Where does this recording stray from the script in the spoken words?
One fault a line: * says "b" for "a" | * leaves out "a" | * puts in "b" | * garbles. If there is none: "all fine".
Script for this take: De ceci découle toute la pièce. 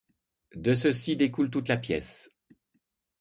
all fine